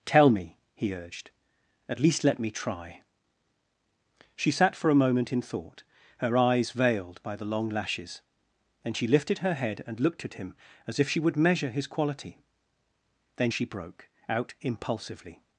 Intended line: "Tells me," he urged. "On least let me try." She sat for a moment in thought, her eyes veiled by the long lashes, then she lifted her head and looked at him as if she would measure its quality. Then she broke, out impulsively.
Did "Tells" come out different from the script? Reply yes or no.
yes